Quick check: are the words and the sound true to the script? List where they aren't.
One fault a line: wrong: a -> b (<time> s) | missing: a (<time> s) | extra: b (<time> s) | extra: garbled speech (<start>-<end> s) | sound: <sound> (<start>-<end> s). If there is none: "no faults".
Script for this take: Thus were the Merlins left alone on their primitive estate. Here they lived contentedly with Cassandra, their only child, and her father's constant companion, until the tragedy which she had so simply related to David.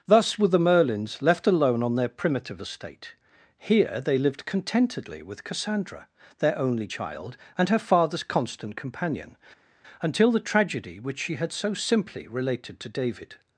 no faults